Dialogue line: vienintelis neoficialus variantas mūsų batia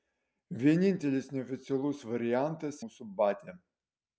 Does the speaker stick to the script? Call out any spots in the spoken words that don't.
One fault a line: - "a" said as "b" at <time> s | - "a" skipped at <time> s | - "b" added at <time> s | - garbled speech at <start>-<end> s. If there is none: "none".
none